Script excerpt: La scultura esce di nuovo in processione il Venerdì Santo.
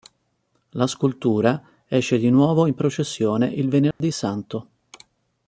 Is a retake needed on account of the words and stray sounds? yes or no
yes